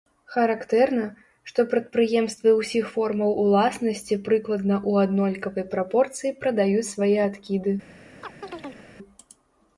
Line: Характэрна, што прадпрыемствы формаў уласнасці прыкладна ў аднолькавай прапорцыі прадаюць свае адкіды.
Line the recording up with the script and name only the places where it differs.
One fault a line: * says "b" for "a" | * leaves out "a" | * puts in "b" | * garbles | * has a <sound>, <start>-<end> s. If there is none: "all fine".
* puts in "ўсіх"
* has a chirp, 8.2-8.9 s